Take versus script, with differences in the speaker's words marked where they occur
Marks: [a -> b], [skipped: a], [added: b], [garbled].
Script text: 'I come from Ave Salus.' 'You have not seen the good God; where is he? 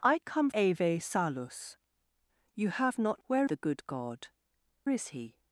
'I come [skipped: from] Ave Salus.' 'You have not [seen -> where] the good God; [skipped: where] is he?